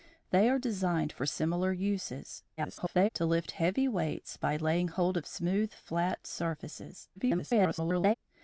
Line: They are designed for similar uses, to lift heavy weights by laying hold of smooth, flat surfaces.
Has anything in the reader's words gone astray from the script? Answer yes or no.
yes